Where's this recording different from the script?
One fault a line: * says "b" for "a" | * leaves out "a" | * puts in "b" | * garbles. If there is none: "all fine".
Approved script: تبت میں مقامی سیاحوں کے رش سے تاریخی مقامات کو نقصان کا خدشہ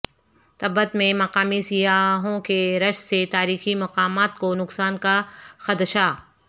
all fine